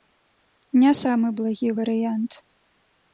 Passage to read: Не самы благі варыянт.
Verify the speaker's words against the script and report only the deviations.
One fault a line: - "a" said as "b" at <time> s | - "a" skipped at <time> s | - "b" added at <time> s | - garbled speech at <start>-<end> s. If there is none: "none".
none